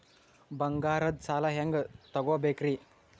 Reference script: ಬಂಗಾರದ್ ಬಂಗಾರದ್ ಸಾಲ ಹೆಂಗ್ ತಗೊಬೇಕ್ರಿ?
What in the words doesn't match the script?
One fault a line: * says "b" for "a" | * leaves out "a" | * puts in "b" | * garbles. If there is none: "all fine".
* leaves out "ಬಂಗಾರದ್"